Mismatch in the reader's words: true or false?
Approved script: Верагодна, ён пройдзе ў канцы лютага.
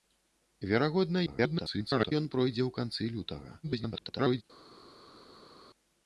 true